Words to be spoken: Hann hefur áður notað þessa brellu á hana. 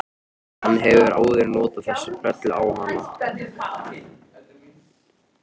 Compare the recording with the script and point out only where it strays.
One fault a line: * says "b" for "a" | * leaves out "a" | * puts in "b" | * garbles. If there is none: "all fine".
all fine